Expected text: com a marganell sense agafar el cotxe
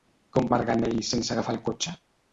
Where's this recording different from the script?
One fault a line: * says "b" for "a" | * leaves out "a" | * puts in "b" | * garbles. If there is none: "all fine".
all fine